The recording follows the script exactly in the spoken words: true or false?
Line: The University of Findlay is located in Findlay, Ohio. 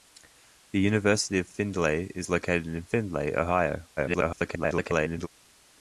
false